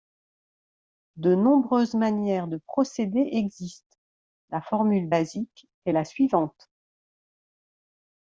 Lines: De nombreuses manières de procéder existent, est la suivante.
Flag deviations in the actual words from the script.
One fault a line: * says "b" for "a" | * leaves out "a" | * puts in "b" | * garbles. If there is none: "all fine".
* puts in "la formule basique"